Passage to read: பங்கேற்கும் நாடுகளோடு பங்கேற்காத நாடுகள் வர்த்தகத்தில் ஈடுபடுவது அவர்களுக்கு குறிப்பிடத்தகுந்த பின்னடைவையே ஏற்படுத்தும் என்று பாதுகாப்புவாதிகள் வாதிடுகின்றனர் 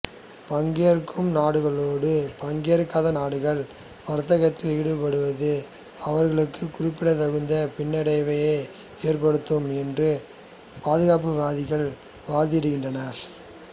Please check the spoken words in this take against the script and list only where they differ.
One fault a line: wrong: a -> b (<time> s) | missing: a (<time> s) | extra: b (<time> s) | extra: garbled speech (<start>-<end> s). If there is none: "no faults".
no faults